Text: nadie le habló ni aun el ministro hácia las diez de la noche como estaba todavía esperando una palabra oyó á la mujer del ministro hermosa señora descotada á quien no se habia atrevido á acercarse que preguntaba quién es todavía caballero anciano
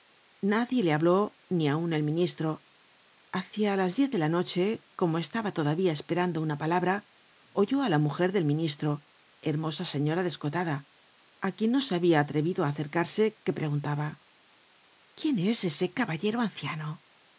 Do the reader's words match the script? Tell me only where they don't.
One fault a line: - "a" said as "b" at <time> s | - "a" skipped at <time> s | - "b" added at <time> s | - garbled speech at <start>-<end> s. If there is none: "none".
- "todavía" said as "ese" at 15.7 s